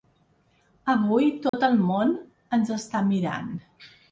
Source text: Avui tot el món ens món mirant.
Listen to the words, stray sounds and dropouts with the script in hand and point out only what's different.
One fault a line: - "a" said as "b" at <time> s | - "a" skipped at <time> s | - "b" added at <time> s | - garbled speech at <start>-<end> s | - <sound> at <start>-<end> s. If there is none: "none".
- dropout at 1.5-1.5 s
- "món" said as "està" at 2.8 s